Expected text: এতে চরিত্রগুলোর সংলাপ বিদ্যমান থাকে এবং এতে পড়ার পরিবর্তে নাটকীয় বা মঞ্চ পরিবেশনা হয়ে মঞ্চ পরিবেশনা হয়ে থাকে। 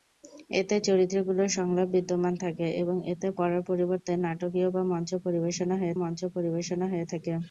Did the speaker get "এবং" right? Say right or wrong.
right